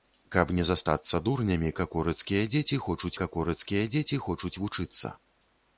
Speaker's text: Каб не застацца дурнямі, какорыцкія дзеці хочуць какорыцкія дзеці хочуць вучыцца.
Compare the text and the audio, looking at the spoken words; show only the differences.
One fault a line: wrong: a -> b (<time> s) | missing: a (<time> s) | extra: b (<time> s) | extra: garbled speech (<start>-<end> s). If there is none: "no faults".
no faults